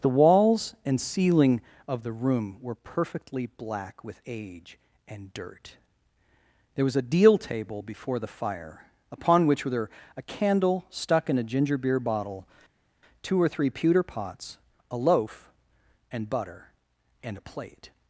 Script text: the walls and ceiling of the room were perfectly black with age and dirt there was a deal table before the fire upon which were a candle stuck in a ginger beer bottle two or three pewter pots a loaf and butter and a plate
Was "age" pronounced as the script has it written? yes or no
yes